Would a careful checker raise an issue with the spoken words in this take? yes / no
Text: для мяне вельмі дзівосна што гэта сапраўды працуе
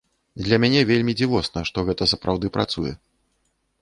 no